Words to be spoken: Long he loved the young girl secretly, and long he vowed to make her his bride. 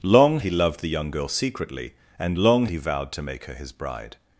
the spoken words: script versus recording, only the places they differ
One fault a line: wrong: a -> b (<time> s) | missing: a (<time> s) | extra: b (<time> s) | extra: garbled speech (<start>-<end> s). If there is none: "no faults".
no faults